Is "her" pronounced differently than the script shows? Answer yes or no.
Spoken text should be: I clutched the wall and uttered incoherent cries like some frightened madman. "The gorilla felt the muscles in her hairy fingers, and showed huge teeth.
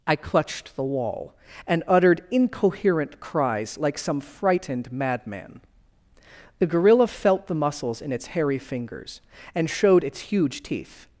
yes